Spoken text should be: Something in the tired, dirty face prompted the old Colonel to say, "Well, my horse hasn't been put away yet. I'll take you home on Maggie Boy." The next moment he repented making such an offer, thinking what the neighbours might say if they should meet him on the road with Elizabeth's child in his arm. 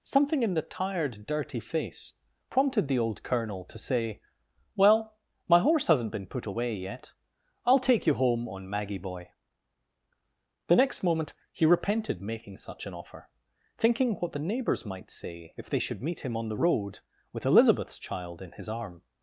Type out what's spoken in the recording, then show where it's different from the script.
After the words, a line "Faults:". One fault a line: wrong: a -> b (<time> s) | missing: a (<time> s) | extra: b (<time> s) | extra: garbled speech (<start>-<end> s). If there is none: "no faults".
Something in the tired, dirty face prompted the old Colonel to say, "Well, my horse hasn't been put away yet. I'll take you home on Maggie Boy." The next moment he repented making such an offer, thinking what the neighbours might say if they should meet him on the road with Elizabeth's child in his arm.
Faults:
no faults